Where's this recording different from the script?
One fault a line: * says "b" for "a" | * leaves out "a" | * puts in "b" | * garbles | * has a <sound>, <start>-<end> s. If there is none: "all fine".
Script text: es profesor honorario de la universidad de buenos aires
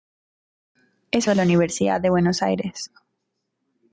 * leaves out "profesor honorario"